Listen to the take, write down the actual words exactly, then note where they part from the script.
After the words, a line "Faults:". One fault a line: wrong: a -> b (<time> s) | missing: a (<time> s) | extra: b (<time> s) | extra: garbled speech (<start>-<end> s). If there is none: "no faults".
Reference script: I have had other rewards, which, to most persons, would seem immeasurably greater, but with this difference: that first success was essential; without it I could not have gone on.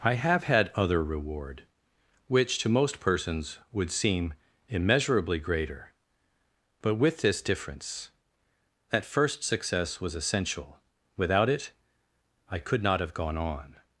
I have had other reward, which, to most persons, would seem immeasurably greater, but with this difference: that first success was essential; without it I could not have gone on.
Faults:
wrong: rewards -> reward (1.0 s)